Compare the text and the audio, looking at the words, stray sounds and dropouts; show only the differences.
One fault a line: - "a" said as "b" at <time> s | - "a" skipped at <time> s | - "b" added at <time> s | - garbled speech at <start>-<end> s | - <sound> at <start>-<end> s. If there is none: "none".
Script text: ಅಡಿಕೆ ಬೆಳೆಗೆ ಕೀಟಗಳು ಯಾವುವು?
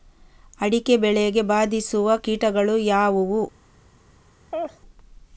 - "ಬಾಧಿಸುವ" added at 1.4 s
- laugh at 4.5-4.8 s